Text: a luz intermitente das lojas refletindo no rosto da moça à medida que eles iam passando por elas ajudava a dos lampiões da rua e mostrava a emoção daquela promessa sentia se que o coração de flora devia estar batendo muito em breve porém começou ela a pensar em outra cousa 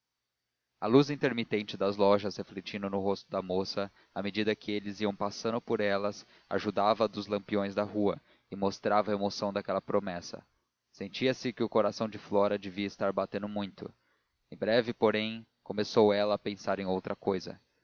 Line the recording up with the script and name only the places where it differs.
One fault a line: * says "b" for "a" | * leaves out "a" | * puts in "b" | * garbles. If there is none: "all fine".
all fine